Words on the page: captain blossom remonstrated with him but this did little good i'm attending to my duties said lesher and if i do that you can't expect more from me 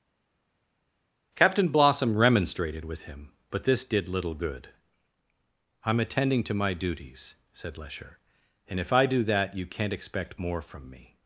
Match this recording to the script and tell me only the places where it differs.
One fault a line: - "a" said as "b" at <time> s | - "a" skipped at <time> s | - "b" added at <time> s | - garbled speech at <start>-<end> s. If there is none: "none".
none